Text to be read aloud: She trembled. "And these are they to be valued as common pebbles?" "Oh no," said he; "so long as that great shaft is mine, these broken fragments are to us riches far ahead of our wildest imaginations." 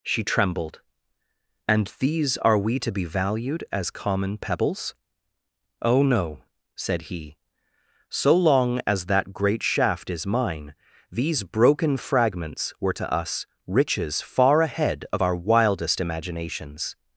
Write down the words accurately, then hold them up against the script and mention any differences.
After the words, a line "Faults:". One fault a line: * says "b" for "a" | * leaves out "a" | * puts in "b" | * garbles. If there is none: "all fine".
She trembled. "And these are we to be valued as common pebbles?" "Oh no," said he; "so long as that great shaft is mine, these broken fragments were to us riches far ahead of our wildest imaginations."
Faults:
* says "we" for "they"
* says "were" for "are"